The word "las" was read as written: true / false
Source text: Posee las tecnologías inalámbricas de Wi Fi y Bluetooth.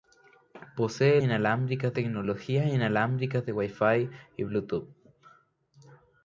false